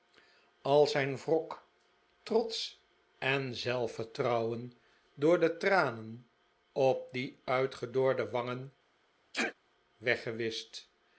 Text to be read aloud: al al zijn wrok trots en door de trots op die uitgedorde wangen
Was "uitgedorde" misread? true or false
false